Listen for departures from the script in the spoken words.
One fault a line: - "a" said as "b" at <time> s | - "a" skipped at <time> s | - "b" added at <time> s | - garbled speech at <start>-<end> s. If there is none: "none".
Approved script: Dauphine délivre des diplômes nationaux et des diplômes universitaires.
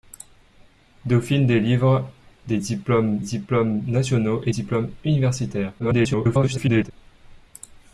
- "diplômes" added at 3.2 s
- "des" skipped at 4.5 s
- garbled speech at 5.8-6.9 s